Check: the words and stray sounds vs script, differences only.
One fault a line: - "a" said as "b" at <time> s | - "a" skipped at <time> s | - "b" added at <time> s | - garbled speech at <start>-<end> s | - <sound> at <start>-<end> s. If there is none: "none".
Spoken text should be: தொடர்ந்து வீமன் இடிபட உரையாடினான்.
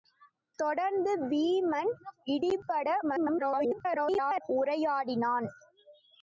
- garbled speech at 3.0-4.4 s